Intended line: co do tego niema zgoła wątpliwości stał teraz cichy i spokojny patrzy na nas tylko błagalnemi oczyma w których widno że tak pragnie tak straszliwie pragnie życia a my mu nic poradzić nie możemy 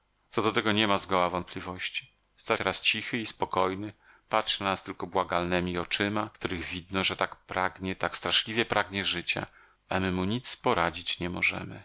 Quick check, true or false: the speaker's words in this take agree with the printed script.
true